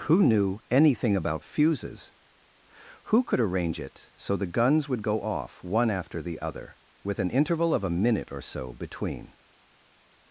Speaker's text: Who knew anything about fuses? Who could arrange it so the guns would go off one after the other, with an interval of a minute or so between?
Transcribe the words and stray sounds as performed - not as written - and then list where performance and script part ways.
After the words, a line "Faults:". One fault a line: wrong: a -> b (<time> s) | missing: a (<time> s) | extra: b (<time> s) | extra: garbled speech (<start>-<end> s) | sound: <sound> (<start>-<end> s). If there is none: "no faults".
Who knew anything about fuses? Who could arrange it so the guns would go off one after the other, with an interval of a minute or so between?
Faults:
no faults